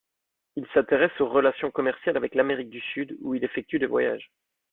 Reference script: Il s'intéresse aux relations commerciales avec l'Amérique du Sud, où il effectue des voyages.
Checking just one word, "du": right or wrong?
right